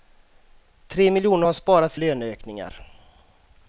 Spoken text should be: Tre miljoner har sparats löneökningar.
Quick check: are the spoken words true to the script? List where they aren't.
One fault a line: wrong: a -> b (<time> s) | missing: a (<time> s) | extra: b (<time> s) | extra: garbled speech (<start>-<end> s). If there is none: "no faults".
no faults